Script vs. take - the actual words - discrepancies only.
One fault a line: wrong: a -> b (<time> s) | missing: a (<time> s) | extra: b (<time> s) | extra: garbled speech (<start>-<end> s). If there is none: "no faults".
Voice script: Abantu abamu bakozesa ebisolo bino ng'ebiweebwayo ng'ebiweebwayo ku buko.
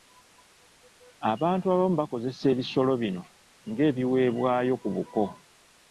missing: ng'ebiweebwayo (4.7 s)